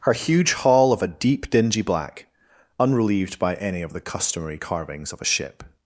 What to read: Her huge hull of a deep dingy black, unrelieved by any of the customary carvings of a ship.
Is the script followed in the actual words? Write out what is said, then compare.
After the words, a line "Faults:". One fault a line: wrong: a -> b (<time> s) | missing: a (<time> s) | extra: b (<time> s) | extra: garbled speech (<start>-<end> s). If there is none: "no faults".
Her huge hull of a deep dingy black, unrelieved by any of the customary carvings of a ship.
Faults:
no faults